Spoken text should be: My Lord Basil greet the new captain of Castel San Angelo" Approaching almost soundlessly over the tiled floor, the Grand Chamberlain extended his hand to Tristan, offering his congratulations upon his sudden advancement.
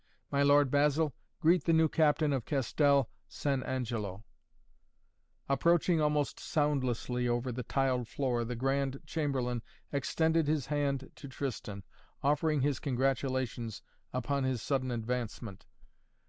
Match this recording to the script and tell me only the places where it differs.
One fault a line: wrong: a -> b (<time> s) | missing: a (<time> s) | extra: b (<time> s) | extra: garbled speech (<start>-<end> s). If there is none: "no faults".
no faults